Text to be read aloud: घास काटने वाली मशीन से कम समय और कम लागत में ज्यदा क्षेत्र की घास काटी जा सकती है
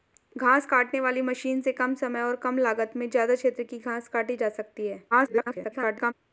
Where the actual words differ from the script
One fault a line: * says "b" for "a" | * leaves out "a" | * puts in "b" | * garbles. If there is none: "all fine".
* garbles